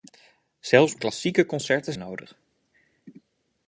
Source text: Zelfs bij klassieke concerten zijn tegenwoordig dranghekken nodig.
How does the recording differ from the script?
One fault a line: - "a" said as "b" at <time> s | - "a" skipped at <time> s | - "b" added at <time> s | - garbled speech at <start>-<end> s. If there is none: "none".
- "bij" skipped at 0.9 s
- "zijn tegenwoordig dranghekken" skipped at 1.9 s